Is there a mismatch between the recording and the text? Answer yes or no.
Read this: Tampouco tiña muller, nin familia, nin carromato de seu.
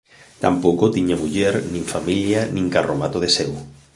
no